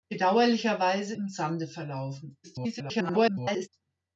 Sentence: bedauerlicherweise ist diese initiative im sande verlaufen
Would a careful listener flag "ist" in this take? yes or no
yes